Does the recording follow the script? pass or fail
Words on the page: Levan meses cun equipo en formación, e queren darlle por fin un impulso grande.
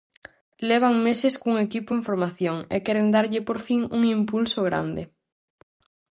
pass